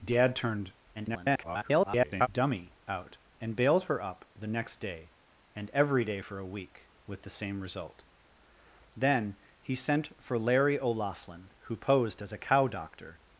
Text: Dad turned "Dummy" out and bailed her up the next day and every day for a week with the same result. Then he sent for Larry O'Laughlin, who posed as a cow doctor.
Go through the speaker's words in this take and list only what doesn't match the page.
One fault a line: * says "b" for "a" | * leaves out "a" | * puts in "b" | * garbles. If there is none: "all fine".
* garbles